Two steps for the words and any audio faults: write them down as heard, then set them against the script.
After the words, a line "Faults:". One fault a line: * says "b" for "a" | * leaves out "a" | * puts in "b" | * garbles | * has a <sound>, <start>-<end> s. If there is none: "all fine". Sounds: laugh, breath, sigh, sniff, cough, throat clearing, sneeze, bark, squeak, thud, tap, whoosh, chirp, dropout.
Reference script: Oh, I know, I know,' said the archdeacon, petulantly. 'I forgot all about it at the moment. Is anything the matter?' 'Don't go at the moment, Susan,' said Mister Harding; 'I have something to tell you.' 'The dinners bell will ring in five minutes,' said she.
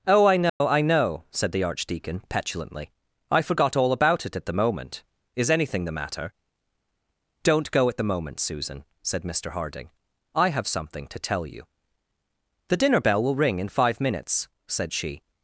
Oh, I know, I know,' said the archdeacon, petulantly. 'I forgot all about it at the moment. Is anything the matter?' 'Don't go at the moment, Susan,' said Mister Harding; 'I have something to tell you.' 'The dinner bell will ring in five minutes,' said she.
Faults:
* has a dropout, 0.5-0.6 s
* says "dinner" for "dinners"